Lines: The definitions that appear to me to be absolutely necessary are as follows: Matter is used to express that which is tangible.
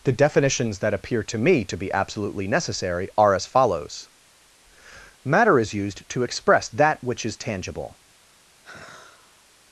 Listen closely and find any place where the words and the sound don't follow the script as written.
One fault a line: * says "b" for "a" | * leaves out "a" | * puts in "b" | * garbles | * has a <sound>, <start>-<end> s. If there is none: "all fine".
* has a sigh, 8.6-9.5 s